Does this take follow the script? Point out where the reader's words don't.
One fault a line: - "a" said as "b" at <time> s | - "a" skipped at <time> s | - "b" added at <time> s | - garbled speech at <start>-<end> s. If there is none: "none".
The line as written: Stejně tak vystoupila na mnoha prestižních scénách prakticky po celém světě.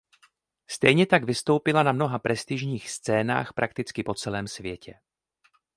none